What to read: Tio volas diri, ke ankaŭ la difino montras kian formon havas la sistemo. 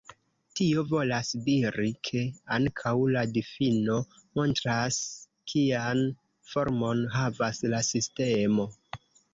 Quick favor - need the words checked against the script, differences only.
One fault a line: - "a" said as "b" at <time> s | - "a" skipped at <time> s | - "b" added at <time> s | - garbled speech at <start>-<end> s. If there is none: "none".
none